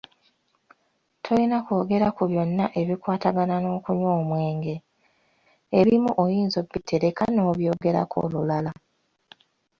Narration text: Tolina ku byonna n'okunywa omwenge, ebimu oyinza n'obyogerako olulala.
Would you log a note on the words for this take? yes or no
yes